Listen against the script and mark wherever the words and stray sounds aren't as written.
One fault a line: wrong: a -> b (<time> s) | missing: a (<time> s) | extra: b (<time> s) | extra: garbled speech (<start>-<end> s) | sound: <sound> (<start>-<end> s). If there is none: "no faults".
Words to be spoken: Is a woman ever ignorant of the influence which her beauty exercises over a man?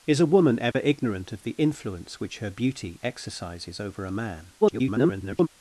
sound: dropout (0.7-0.7 s)
extra: garbled speech (4.6-5.5 s)